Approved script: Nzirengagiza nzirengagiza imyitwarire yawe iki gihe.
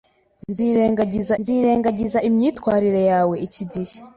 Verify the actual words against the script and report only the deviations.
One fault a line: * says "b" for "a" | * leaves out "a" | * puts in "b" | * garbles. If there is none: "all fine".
all fine